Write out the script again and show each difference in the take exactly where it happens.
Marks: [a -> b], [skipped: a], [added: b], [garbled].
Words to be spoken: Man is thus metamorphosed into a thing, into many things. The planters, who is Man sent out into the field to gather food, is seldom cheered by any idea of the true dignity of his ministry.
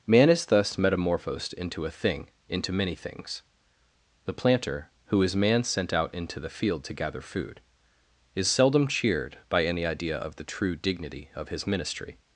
Man is thus metamorphosed into a thing, into many things. The [planters, -> planter] who is Man sent out into the field to gather food, is seldom cheered by any idea of the true dignity of his ministry.